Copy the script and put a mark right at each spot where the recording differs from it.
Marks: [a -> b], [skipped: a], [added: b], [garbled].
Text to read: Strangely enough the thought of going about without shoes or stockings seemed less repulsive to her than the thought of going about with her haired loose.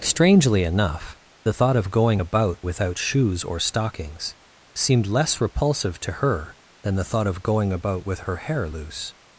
Strangely enough the thought of going about without shoes or stockings seemed less repulsive to her than the thought of going about with her [haired -> hair] loose.